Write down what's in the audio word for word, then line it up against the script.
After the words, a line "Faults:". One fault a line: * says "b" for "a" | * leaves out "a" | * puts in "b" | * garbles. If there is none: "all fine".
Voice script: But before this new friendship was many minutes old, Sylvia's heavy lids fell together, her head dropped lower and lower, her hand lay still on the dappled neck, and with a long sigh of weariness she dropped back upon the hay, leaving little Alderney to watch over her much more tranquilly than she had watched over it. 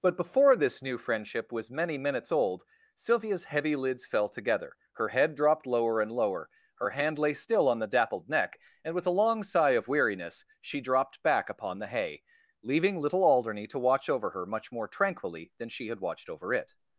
But before this new friendship was many minutes old, Sylvia's heavy lids fell together, her head dropped lower and lower, her hand lay still on the dappled neck, and with a long sigh of weariness she dropped back upon the hay, leaving little Alderney to watch over her much more tranquilly than she had watched over it.
Faults:
all fine